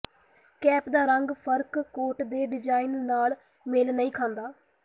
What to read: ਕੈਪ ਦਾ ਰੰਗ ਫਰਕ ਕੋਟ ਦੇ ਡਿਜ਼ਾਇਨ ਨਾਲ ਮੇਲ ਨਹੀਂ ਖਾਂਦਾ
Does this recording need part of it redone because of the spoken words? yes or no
no